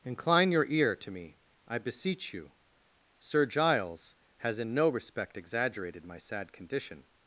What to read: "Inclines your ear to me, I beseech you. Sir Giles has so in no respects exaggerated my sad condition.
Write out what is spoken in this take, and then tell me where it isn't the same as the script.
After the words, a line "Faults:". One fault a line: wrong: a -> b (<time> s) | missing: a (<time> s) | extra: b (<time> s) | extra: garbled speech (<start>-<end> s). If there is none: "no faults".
"Incline your ear to me, I beseech you. Sir Giles has in no respect exaggerated my sad condition.
Faults:
wrong: Inclines -> Incline (0.0 s)
missing: so (4.6 s)
wrong: respects -> respect (4.9 s)